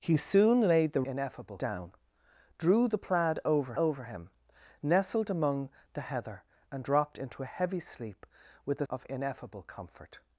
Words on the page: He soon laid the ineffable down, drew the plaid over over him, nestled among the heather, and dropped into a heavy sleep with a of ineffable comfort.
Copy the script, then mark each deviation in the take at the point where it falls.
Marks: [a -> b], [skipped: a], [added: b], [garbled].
He soon laid the ineffable down, drew the plaid over over him, nestled among the heather, and dropped into a heavy sleep with a of ineffable comfort.